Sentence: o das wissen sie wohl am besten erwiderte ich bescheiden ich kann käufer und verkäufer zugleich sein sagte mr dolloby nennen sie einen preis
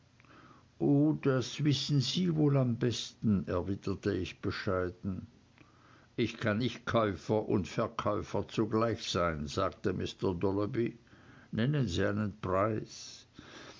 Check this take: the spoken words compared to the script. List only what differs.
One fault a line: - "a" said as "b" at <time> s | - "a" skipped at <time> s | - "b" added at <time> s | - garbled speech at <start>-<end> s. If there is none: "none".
- "nicht" added at 6.6 s